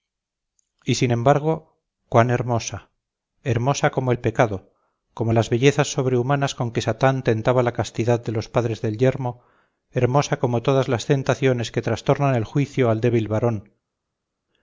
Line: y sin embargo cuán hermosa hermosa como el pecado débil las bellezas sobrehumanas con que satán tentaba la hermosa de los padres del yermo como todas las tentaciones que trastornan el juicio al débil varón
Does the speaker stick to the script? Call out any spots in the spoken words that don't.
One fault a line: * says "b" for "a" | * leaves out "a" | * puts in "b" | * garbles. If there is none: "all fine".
* says "como" for "débil"
* says "castidad" for "hermosa"
* puts in "hermosa"